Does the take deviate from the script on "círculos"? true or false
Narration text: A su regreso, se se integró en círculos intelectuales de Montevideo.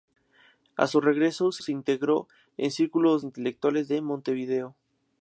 false